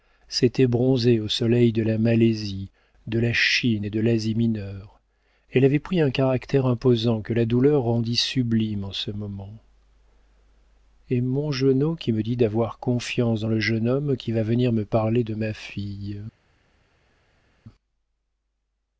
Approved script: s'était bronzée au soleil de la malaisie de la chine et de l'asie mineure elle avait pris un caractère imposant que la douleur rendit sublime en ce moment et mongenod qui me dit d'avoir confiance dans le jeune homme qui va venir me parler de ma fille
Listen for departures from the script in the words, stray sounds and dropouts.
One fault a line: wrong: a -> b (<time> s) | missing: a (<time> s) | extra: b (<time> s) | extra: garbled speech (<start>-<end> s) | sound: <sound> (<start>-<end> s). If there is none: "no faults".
no faults